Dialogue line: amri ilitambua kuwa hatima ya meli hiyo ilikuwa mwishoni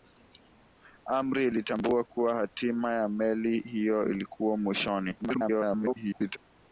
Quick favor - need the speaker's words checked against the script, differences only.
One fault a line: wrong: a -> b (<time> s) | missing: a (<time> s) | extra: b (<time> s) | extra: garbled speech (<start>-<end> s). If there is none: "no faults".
extra: garbled speech (5.2-6.4 s)